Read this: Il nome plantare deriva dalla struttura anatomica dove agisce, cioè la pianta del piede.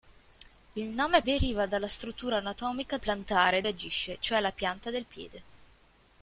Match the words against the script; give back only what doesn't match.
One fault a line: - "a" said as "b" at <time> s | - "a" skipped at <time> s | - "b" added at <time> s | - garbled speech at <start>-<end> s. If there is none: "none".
- "plantare" skipped at 1.2 s
- "dove" said as "plantare" at 3.0 s